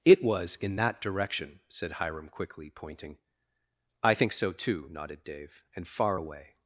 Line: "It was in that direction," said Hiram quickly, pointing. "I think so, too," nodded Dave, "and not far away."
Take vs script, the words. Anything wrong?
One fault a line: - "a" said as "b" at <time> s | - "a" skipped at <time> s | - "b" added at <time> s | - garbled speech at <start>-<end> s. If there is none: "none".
- "not" skipped at 5.9 s